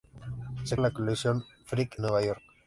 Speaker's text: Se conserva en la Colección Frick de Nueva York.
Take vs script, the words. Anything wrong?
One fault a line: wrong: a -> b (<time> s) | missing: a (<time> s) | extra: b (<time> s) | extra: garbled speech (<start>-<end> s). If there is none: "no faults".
missing: conserva (0.8 s)
missing: de (2.0 s)